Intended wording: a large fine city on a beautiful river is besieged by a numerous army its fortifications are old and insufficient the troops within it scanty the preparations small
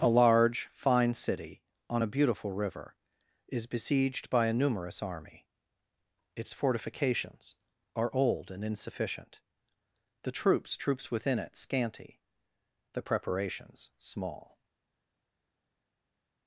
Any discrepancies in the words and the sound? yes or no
yes